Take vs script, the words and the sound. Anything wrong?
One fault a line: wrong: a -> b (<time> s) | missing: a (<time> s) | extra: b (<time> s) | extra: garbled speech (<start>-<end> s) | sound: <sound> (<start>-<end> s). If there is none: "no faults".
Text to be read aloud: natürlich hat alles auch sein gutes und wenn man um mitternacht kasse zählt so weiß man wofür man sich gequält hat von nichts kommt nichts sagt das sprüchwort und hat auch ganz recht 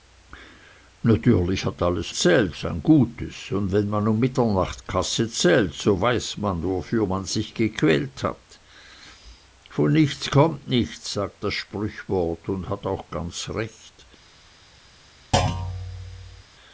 wrong: auch -> zählt (2.1 s)
sound: thud (15.3-16.4 s)